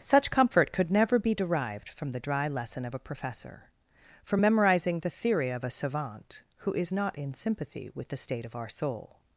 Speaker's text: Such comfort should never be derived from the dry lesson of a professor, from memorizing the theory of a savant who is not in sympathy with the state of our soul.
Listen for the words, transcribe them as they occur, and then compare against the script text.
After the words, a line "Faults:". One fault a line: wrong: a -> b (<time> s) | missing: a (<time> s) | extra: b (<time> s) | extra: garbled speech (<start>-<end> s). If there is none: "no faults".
Such comfort could never be derived from the dry lesson of a professor, from memorizing the theory of a savant who is not in sympathy with the state of our soul.
Faults:
wrong: should -> could (0.7 s)